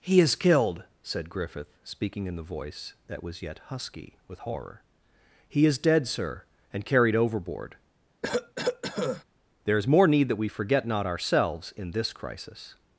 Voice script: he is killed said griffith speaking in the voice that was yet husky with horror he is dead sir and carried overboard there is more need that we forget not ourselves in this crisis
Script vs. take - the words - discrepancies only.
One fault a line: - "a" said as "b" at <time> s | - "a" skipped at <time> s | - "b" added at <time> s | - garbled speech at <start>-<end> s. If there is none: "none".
none